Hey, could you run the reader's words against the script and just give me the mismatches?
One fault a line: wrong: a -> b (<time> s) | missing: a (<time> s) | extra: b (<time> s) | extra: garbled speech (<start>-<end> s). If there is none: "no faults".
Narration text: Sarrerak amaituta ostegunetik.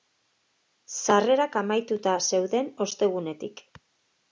extra: zeuden (2.3 s)